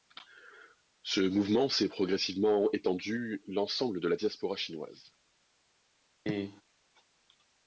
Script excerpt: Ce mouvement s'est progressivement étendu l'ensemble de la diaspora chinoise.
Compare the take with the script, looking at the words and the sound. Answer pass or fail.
fail